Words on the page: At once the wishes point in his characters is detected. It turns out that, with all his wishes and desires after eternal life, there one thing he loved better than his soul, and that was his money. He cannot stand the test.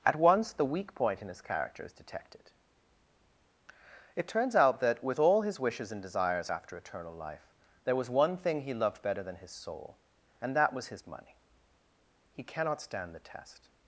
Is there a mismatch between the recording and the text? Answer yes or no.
yes